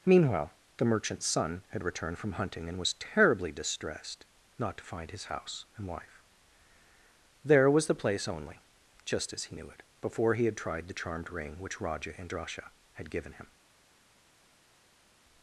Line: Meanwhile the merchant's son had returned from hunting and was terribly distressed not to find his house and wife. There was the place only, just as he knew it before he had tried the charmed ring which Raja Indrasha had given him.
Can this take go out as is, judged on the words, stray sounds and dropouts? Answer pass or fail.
pass